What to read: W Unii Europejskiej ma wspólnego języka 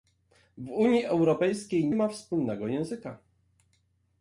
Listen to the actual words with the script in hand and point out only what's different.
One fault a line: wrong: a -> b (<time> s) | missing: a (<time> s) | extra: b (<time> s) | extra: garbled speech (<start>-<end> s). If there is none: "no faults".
no faults